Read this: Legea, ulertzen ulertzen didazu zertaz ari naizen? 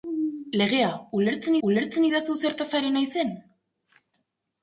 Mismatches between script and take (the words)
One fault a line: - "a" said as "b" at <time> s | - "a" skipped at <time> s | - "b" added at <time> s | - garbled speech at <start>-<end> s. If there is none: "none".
none